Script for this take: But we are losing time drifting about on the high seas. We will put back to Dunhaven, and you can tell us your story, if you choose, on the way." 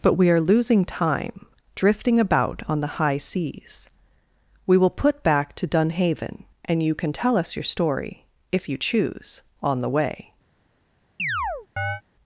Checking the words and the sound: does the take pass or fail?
fail